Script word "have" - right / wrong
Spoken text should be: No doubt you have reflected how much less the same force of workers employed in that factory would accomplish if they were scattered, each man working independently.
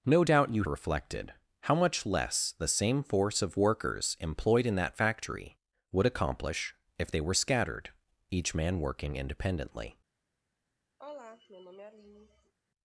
wrong